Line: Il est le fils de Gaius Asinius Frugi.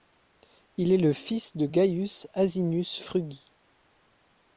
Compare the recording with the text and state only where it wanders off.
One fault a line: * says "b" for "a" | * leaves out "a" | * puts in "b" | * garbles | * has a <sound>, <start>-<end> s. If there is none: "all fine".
all fine